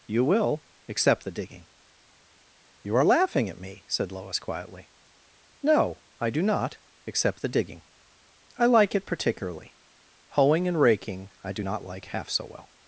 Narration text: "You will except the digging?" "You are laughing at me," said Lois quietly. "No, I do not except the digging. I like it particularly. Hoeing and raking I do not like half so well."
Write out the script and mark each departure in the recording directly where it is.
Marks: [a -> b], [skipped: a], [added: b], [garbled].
"You will except the digging?" "You are laughing at me," said Lois quietly. "No, I do not except the digging. I like it particularly. Hoeing and raking I do not like half so well."